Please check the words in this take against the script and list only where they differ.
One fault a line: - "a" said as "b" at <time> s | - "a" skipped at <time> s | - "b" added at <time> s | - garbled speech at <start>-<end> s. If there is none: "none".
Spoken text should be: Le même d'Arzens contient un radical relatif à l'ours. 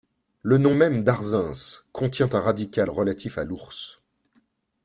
- "nom" added at 0.6 s